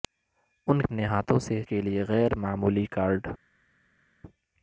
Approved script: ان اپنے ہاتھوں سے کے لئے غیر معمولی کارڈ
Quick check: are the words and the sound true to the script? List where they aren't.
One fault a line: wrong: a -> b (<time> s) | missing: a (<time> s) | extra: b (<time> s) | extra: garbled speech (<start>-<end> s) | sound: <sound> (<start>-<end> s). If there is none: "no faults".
no faults